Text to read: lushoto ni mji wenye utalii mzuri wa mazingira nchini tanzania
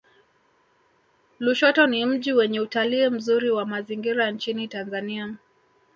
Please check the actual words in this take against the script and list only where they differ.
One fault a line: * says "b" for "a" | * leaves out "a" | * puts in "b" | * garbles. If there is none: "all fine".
all fine